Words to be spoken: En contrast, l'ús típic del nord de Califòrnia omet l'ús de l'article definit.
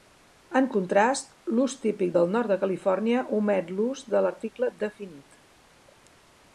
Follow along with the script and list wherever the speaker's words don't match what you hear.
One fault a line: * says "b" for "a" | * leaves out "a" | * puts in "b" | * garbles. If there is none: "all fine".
all fine